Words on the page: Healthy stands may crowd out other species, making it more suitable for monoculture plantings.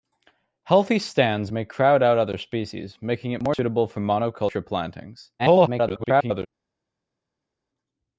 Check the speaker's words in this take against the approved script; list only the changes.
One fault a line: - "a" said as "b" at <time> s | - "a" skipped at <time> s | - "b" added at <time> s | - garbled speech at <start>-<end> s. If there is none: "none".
- garbled speech at 5.4-6.5 s